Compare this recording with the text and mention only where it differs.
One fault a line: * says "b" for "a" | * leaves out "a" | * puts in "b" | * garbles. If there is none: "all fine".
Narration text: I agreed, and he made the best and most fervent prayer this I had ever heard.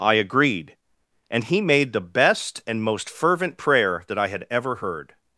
* says "that" for "this"